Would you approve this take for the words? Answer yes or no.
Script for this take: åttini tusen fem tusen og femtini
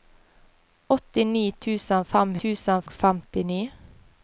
yes